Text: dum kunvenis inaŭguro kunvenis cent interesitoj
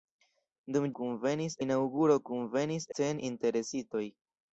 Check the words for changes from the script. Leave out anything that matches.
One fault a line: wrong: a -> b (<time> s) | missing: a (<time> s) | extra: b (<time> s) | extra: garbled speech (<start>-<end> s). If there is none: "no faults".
no faults